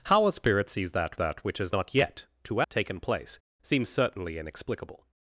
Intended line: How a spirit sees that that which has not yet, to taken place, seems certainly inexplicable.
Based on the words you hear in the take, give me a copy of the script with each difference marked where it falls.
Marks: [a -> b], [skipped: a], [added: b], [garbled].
How a spirit sees that that which has not yet, to taken place, seems certainly inexplicable.